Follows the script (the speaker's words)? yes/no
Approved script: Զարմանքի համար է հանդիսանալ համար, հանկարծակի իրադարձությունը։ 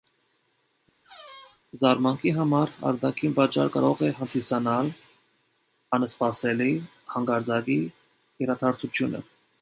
no